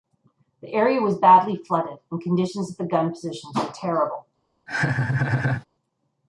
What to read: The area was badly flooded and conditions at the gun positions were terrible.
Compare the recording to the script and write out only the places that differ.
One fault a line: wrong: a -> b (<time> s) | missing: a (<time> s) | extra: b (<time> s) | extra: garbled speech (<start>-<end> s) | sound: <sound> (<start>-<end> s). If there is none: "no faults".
sound: laugh (4.7-5.7 s)